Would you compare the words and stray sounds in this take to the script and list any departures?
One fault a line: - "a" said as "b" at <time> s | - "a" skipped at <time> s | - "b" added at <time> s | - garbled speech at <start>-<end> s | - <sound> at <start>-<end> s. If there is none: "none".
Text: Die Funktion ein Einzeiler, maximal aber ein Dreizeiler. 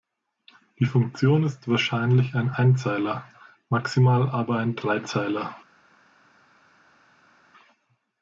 - "ist wahrscheinlich" added at 1.4 s